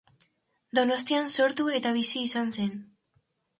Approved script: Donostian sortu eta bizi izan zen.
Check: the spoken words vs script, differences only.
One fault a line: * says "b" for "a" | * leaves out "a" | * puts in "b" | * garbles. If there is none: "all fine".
all fine